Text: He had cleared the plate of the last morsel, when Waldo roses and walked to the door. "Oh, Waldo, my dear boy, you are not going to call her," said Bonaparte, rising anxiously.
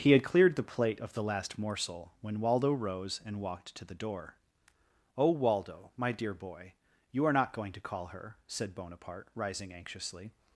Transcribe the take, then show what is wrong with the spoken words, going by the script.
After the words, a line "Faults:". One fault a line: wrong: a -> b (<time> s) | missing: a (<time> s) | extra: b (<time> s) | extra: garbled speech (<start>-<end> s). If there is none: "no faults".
He had cleared the plate of the last morsel, when Waldo rose and walked to the door. "Oh, Waldo, my dear boy, you are not going to call her," said Bonaparte, rising anxiously.
Faults:
wrong: roses -> rose (2.7 s)